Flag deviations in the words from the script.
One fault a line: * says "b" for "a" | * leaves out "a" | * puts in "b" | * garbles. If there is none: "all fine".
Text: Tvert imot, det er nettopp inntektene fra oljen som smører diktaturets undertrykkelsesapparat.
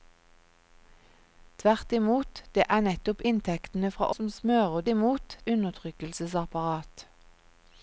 * leaves out "oljen"
* says "imot" for "diktaturets"